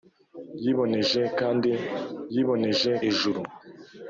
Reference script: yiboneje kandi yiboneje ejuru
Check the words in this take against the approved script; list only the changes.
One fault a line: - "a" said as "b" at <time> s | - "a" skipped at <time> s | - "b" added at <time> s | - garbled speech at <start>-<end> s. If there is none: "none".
none